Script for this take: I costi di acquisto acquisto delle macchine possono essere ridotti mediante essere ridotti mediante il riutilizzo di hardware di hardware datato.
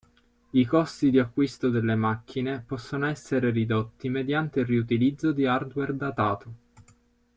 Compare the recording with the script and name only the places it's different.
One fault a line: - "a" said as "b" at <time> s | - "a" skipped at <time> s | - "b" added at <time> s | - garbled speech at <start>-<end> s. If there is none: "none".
- "acquisto" skipped at 1.7 s
- "essere ridotti mediante" skipped at 4.6 s
- "di hardware" skipped at 5.9 s